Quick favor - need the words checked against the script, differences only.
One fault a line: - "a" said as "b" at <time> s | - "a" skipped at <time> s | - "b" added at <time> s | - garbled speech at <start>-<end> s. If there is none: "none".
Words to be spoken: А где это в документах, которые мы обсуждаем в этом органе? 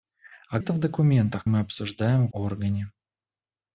- "где" skipped at 0.6 s
- "которые" skipped at 1.4 s
- "этом" skipped at 2.3 s